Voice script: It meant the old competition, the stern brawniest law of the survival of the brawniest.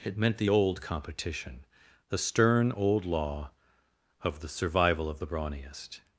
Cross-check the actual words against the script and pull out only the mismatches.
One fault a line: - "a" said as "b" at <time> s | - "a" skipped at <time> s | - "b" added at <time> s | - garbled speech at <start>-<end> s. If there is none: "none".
- "brawniest" said as "old" at 2.7 s